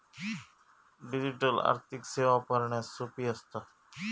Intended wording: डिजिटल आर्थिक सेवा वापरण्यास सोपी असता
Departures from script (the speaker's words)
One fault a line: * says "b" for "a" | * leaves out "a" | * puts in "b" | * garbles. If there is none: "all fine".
all fine